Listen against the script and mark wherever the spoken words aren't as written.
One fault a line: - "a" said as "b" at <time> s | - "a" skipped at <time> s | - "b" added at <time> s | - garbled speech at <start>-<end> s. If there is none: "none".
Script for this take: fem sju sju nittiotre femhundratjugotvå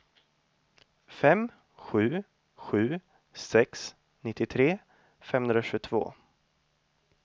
- "sex" added at 3.4 s